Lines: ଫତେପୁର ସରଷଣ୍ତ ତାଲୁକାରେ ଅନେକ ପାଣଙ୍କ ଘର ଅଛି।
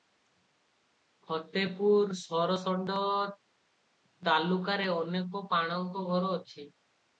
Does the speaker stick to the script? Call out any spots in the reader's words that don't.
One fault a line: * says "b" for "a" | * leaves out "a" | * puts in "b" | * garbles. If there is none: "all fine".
all fine